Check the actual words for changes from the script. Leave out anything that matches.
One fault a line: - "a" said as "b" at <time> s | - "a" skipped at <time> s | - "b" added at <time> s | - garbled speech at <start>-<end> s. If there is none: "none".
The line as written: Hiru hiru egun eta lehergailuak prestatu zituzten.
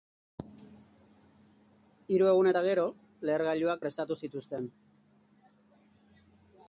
- "hiru" skipped at 2.3 s
- "gero" added at 2.7 s